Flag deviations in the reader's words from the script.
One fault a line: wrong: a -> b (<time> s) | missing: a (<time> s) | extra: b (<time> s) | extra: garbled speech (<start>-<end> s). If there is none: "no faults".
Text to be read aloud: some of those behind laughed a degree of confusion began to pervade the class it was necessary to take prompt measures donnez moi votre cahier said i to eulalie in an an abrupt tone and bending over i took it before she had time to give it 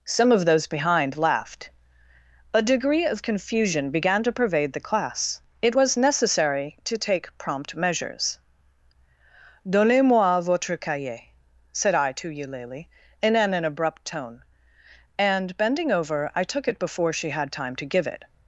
no faults